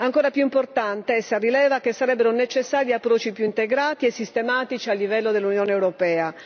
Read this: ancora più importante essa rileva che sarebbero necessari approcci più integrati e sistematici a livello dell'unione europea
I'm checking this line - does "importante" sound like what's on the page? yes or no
yes